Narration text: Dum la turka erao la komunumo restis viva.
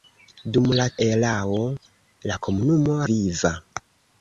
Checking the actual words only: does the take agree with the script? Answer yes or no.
no